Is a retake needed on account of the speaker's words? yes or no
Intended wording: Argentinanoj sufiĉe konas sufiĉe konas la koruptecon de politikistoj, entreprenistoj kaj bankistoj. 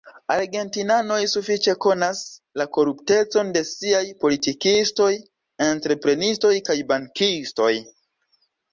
yes